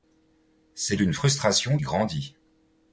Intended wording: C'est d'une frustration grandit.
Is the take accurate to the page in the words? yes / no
yes